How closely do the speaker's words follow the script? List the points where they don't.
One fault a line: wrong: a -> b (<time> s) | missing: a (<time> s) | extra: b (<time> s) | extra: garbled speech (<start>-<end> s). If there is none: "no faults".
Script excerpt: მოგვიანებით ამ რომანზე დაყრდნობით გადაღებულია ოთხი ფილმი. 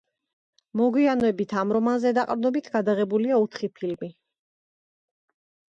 no faults